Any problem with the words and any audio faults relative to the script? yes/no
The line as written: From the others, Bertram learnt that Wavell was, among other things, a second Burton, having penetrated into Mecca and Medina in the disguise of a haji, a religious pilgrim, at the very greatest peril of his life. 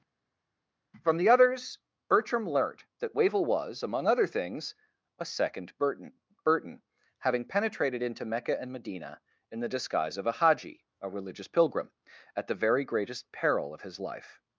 yes